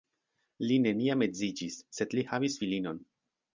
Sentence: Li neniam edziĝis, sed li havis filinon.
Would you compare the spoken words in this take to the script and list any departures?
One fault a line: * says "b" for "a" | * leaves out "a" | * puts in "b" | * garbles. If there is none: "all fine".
all fine